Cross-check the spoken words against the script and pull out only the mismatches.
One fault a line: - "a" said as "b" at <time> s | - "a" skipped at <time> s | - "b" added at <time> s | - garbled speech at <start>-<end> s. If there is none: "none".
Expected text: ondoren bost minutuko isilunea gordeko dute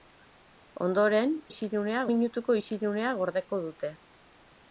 - "bost" said as "isilunea" at 1.5 s